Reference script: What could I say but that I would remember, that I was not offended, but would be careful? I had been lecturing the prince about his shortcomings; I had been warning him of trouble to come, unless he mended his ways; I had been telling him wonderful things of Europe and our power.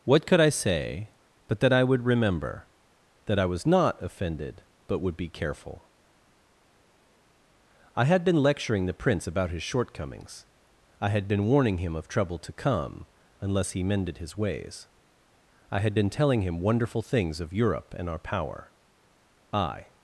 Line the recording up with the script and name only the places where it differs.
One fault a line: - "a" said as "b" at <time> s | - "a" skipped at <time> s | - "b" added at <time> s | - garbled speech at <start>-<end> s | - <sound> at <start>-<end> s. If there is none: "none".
- "I" added at 19.5 s